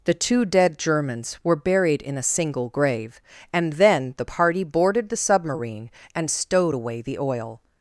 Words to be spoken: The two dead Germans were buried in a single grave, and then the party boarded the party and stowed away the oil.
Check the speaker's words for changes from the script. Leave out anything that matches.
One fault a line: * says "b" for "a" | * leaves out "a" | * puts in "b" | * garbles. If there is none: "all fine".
* says "submarine" for "party"